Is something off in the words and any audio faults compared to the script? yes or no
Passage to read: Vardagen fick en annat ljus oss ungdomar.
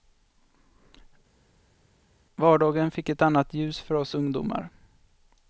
yes